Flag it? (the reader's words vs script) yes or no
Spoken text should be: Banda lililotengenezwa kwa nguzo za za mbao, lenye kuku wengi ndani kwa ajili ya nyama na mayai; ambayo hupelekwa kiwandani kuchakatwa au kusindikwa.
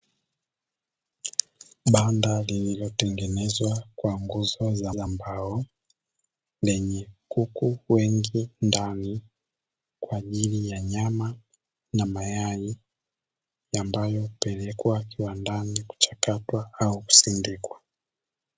no